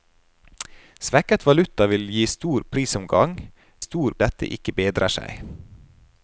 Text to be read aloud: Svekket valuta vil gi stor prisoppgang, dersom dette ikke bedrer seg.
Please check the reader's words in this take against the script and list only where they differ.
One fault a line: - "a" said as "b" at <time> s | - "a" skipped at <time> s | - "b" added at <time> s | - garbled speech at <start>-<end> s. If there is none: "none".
- "dersom" said as "stor" at 3.8 s